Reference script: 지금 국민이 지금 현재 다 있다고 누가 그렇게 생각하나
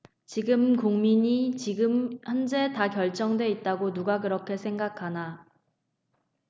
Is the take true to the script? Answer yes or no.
no